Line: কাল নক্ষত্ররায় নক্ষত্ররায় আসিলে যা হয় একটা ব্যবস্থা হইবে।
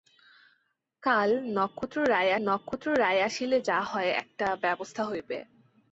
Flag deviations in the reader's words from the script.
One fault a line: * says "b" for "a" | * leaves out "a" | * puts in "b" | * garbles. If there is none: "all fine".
all fine